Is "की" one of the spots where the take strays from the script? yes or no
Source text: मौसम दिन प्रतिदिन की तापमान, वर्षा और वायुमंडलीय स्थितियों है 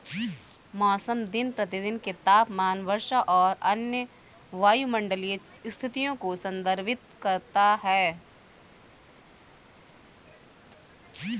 yes